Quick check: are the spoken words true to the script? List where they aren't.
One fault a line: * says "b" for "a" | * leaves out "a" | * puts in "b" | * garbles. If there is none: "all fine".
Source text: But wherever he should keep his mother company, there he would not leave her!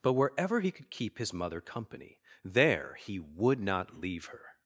* says "could" for "should"